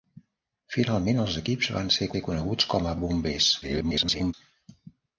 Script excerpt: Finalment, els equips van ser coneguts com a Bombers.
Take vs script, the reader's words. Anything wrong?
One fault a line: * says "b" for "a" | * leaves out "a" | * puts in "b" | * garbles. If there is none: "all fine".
* puts in "ser"
* garbles